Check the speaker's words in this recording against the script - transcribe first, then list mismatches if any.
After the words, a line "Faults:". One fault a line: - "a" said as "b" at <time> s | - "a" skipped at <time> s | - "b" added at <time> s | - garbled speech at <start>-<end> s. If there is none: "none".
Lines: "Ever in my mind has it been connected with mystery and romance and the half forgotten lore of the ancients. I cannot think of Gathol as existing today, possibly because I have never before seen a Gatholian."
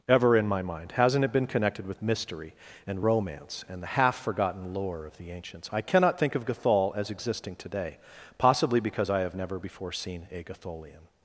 "Ever in my mind hasn't it been connected with mystery and romance and the half forgotten lore of the ancients. I cannot think of Gathol as existing today, possibly because I have never before seen a Gatholian."
Faults:
- "has" said as "hasn't" at 0.9 s